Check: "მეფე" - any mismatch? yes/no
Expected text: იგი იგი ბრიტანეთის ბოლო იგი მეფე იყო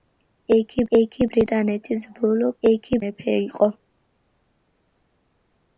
no